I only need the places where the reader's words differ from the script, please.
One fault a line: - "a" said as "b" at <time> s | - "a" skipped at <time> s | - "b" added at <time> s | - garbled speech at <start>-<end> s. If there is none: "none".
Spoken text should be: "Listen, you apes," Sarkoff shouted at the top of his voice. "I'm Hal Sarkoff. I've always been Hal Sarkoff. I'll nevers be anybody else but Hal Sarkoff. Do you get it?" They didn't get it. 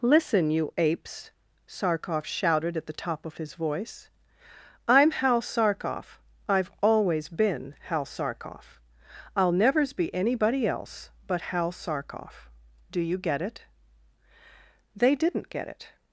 none